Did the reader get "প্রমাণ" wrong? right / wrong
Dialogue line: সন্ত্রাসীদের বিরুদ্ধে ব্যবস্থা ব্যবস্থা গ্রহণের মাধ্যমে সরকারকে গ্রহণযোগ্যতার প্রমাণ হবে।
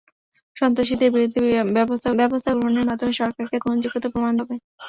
right